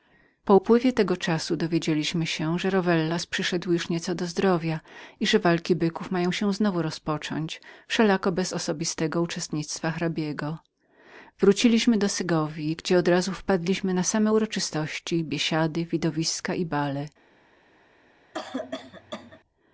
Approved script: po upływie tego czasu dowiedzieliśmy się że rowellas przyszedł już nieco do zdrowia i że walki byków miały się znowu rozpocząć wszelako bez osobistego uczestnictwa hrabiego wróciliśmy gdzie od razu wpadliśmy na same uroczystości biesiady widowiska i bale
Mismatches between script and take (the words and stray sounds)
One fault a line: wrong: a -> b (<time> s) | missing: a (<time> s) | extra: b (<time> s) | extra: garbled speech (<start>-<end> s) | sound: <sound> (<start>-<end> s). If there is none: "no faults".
extra: do segowji (12.0 s)
sound: cough (18.3-19.4 s)